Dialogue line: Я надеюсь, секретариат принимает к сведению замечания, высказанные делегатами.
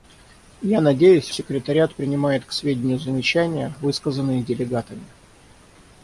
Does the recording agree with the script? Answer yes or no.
yes